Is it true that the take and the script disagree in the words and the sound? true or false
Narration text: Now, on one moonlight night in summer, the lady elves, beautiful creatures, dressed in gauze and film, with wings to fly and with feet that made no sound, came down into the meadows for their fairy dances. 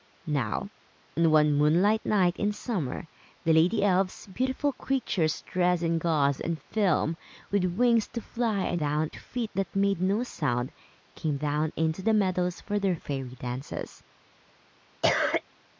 true